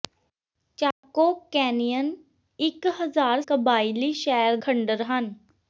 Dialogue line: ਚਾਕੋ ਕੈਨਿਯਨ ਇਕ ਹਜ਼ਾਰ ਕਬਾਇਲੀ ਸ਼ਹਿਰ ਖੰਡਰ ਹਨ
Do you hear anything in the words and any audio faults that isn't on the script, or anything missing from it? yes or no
yes